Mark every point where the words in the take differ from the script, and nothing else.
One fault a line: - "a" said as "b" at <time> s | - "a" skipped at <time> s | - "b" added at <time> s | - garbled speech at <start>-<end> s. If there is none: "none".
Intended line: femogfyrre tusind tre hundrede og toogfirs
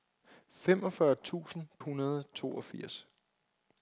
- "tre" skipped at 1.7 s